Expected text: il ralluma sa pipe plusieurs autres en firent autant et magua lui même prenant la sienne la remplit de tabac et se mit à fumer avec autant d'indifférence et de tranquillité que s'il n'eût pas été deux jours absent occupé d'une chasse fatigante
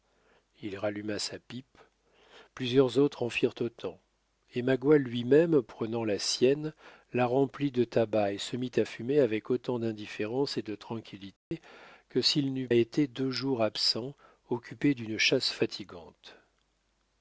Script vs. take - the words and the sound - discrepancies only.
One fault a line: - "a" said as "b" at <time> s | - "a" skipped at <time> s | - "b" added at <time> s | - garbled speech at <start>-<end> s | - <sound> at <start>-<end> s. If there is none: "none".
- dropout at 11.4-11.5 s
- "pas" skipped at 12.7 s